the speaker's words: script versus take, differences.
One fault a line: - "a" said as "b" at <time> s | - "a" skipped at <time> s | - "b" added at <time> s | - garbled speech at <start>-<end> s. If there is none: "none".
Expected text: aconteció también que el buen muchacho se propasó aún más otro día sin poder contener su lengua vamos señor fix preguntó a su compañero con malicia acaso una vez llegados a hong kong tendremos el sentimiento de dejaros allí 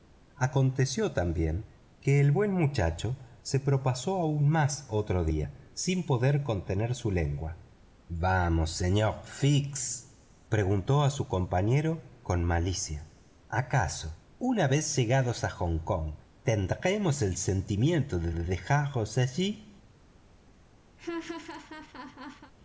- "de" added at 18.3 s